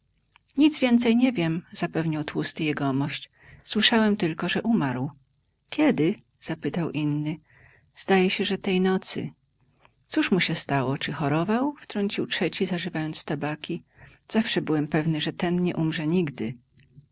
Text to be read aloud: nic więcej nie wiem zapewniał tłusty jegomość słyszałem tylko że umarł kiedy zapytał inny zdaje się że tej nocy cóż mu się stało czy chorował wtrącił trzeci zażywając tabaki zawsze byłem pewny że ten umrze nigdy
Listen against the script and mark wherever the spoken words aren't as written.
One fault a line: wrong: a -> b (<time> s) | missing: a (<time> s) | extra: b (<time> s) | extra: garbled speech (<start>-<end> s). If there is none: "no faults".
extra: nie (15.6 s)